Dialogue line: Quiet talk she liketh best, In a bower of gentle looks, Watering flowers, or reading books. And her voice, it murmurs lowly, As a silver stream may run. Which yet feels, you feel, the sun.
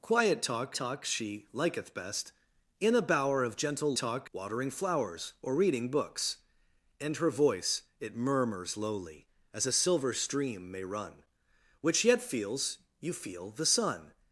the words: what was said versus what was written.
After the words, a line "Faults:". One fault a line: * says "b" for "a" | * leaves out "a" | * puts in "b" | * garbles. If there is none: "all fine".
Quiet talk talk she liketh best, In a bower of gentle talk, Watering flowers, or reading books. And her voice, it murmurs lowly, As a silver stream may run. Which yet feels, you feel, the sun.
Faults:
* puts in "talk"
* says "talk" for "looks"